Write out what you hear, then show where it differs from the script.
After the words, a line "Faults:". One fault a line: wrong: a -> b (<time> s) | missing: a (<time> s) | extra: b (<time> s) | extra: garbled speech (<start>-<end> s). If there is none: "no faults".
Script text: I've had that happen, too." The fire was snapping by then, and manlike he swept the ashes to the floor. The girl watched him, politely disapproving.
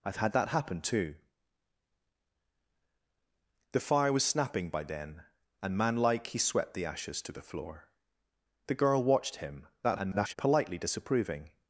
I've had that happen, too." The fire was snapping by then, and manlike he swept the ashes to the floor. The girl watched him, [garbled] politely disapproving.
Faults:
extra: garbled speech (9.8-10.3 s)